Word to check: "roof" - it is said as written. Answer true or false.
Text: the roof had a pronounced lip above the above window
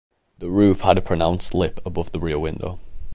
true